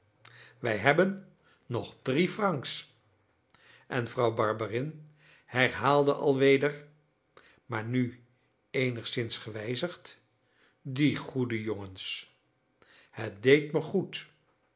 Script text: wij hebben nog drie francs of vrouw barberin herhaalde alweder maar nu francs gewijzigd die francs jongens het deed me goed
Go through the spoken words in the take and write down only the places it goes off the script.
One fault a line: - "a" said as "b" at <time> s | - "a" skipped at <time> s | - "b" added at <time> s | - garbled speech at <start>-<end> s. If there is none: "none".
- "of" said as "en" at 3.9 s
- "francs" said as "eenigszins" at 8.7 s
- "francs" said as "goede" at 11.2 s